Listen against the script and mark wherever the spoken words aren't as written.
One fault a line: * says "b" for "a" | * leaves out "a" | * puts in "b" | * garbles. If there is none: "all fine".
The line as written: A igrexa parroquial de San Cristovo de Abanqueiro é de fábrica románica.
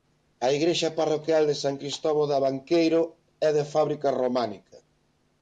all fine